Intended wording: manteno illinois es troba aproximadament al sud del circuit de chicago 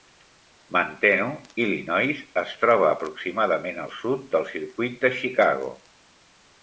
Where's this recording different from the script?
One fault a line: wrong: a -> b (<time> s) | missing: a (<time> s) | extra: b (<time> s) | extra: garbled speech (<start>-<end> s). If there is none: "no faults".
no faults